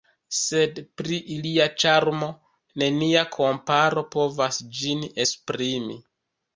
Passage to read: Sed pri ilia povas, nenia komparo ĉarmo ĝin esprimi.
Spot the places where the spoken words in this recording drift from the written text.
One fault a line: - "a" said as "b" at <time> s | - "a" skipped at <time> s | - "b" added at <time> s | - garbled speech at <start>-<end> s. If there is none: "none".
- "povas" said as "ĉarmo" at 1.8 s
- "ĉarmo" said as "povas" at 4.2 s